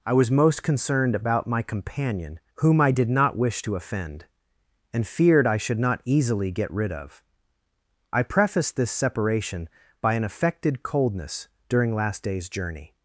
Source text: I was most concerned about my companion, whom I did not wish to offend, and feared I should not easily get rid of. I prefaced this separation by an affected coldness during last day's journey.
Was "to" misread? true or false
false